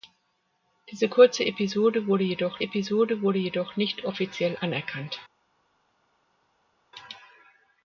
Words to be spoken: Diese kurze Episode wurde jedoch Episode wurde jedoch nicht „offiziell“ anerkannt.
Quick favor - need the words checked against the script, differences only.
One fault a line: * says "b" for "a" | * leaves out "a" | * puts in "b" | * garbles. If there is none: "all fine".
all fine